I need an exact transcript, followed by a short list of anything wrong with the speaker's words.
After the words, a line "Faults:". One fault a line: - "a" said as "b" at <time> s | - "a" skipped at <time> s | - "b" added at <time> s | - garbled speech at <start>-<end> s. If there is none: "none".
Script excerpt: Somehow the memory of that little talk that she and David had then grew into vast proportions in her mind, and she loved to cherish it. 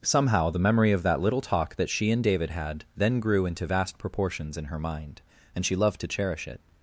Somehow the memory of that little talk that she and David had then grew into vast proportions in her mind, and she loved to cherish it.
Faults:
none